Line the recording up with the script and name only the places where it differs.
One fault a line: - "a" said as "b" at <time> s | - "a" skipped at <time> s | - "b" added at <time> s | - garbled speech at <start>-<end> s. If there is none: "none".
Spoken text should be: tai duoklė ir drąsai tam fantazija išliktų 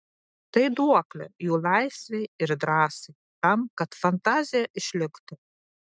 - "jų laisvei" added at 1.5 s
- "kad" added at 3.8 s